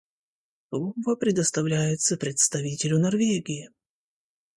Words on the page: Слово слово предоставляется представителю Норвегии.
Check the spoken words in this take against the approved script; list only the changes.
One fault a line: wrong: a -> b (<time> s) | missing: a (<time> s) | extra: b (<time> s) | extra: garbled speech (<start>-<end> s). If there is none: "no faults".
missing: слово (1.1 s)